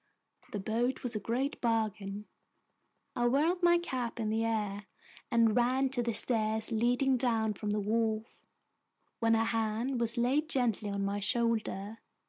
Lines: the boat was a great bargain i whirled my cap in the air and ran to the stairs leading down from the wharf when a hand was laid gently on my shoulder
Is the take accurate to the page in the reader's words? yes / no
yes